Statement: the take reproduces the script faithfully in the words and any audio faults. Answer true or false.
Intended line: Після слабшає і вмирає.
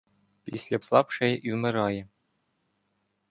true